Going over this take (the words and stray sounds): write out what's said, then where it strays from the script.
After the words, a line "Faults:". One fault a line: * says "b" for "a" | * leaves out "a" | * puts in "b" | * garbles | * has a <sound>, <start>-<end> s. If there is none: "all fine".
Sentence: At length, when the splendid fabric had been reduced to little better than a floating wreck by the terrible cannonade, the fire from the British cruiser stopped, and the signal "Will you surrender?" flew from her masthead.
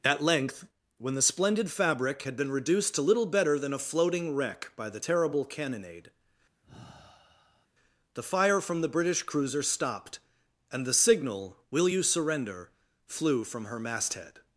At length, when the splendid fabric had been reduced to little better than a floating wreck by the terrible cannonade, the fire from the British cruiser stopped, and the signal "Will you surrender?" flew from her masthead.
Faults:
* has a sigh, 6.6-7.7 s